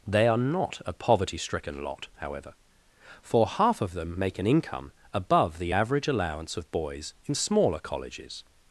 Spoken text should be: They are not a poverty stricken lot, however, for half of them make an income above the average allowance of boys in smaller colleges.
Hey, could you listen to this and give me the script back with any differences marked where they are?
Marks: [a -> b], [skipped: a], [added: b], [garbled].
They are not a poverty stricken lot, however, for half of them make an income above the average allowance of boys in smaller colleges.